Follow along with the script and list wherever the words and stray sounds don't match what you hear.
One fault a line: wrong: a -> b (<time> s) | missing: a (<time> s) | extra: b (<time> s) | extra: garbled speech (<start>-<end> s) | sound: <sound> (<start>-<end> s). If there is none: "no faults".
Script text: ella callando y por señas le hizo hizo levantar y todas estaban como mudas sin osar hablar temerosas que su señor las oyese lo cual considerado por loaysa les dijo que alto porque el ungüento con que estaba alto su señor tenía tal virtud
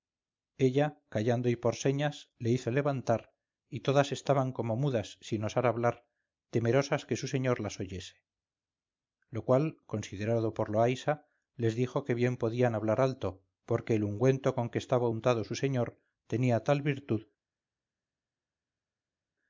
missing: hizo (2.7 s)
extra: bien podían hablar (12.1 s)
wrong: alto -> untado (15.1 s)